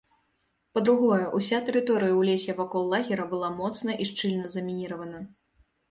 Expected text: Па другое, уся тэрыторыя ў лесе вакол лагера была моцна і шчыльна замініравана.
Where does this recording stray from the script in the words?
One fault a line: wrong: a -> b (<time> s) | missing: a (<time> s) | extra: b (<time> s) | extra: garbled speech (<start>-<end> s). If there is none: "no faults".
no faults